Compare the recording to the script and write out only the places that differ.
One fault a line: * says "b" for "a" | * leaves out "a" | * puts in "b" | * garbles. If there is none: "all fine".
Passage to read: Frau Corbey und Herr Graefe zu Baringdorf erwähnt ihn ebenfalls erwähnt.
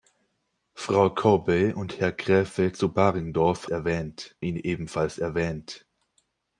all fine